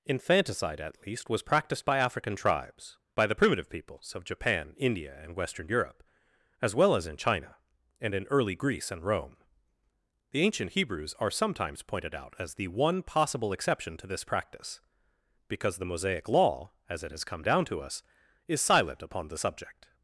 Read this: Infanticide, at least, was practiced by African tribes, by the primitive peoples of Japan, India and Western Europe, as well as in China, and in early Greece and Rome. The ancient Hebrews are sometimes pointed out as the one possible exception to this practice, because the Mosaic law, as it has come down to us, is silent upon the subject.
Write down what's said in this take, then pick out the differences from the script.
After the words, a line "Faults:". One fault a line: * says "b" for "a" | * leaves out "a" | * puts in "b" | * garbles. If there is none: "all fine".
Infanticide, at least, was practiced by African tribes, by the primitive peoples of Japan, India and Western Europe, as well as in China, and in early Greece and Rome. The ancient Hebrews are sometimes pointed out as the one possible exception to this practice, because the Mosaic law, as it has come down to us, is silent upon the subject.
Faults:
all fine